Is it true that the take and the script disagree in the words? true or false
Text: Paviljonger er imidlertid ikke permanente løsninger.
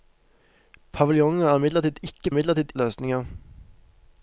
true